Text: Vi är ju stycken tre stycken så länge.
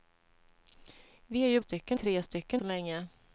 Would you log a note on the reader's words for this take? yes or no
no